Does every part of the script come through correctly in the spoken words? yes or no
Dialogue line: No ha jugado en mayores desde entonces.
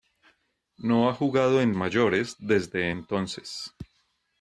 yes